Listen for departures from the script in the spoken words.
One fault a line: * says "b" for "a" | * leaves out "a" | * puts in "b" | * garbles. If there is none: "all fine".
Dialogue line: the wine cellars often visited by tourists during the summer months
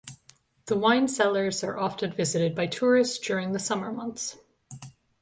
* puts in "are"